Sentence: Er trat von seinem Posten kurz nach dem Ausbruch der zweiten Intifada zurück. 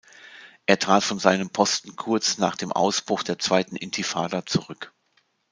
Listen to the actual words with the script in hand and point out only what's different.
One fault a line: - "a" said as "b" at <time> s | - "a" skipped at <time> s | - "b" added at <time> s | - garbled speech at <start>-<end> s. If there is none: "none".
none